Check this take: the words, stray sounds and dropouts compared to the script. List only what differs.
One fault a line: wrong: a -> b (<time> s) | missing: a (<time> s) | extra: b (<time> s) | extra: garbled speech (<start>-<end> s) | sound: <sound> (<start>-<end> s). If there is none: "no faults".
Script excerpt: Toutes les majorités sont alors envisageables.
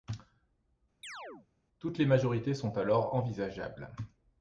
sound: chirp (1.0-1.5 s)